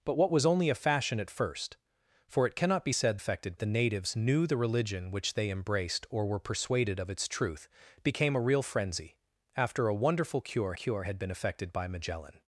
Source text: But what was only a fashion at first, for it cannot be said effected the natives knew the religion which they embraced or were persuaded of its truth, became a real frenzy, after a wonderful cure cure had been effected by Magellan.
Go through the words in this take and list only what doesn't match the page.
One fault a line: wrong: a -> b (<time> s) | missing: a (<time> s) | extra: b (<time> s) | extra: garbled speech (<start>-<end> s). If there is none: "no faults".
no faults